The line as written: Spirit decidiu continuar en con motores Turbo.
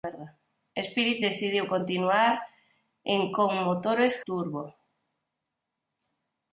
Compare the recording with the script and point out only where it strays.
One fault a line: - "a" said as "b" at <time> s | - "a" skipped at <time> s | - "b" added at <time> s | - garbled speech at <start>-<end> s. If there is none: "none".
none